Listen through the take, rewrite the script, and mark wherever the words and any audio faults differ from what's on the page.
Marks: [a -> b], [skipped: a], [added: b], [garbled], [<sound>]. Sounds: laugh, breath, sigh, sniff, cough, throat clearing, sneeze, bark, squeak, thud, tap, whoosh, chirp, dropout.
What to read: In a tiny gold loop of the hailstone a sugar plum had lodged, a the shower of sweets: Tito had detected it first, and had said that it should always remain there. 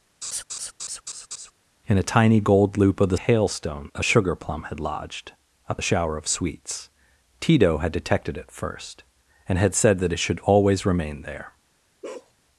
[laugh] In a tiny gold loop of the hailstone a sugar plum had lodged, a the shower of sweets: Tito had detected it first, and had said that it should always remain there. [bark]